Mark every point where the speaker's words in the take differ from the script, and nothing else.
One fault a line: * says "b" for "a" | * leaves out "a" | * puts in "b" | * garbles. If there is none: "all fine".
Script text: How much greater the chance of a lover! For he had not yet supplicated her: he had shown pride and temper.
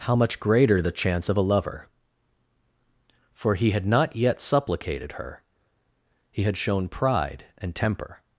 all fine